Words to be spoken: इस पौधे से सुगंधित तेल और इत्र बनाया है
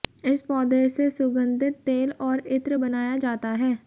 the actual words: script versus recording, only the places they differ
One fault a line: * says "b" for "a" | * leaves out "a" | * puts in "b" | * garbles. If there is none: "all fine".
* puts in "जाता"